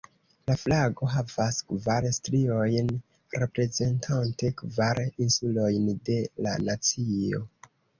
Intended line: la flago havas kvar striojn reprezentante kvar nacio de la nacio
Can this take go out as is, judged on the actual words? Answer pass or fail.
fail